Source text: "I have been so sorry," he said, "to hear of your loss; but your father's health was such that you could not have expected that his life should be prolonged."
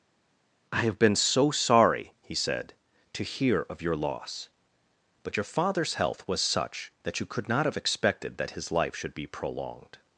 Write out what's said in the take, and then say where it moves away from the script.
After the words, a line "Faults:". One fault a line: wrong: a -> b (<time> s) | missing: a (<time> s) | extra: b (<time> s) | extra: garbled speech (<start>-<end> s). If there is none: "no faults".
"I have been so sorry," he said, "to hear of your loss; but your father's health was such that you could not have expected that his life should be prolonged."
Faults:
no faults